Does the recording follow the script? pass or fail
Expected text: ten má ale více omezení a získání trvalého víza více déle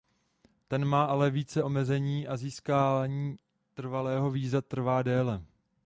fail